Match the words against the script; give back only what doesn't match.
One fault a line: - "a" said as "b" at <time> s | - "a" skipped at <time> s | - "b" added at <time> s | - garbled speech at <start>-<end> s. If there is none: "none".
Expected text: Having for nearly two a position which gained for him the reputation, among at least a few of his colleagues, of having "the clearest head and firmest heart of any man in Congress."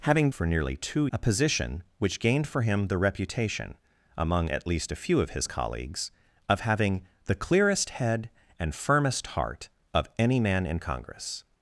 none